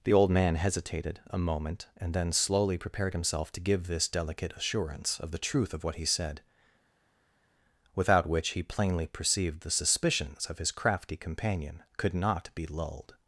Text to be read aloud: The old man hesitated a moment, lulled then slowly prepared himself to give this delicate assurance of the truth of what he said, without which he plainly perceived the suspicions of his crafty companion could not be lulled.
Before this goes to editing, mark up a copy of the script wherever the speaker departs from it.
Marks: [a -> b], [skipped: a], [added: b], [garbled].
The old man hesitated a moment, [lulled -> and] then slowly prepared himself to give this delicate assurance of the truth of what he said, without which he plainly perceived the suspicions of his crafty companion could not be lulled.